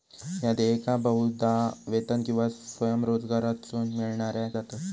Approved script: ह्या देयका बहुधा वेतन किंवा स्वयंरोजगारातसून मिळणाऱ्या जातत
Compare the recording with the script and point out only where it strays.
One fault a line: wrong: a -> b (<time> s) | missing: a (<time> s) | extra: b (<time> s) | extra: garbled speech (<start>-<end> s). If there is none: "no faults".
no faults